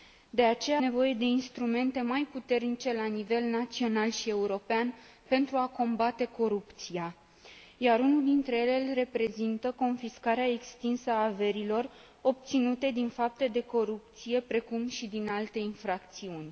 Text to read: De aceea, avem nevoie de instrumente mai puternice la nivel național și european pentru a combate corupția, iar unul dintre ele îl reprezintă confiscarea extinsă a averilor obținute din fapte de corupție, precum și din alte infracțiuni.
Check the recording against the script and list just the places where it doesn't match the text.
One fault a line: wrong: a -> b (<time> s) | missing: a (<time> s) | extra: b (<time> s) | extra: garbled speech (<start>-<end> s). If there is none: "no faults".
missing: avem (0.8 s)